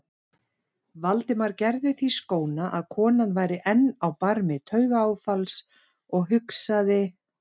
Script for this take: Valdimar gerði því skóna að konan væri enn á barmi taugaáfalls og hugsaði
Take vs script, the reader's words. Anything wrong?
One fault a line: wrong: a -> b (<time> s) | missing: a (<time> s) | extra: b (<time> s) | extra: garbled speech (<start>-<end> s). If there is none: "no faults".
no faults